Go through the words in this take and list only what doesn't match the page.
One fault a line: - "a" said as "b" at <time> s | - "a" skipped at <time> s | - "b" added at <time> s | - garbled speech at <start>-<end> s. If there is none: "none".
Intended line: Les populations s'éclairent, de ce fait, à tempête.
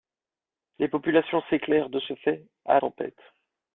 none